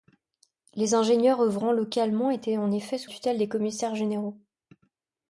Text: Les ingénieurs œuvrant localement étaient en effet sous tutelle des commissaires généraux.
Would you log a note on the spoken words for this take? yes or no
no